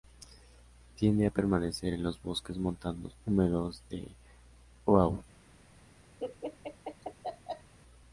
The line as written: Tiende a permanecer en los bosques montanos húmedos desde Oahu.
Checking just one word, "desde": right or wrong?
wrong